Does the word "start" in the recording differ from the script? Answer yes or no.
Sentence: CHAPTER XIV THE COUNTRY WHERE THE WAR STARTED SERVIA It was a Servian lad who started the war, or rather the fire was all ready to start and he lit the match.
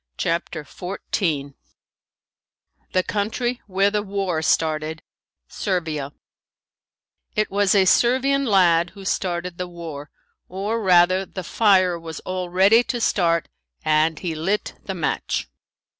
no